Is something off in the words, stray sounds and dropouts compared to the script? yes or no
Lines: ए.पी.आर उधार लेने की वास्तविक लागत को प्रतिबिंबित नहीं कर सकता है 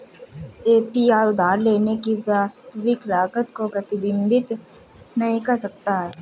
no